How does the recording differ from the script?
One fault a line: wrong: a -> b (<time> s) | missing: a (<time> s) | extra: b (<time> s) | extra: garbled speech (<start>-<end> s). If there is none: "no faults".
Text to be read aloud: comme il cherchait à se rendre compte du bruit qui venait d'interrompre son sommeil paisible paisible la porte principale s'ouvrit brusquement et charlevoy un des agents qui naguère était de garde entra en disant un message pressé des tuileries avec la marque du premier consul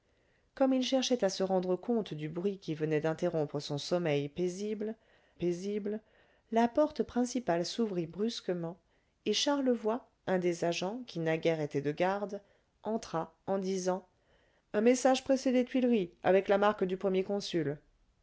no faults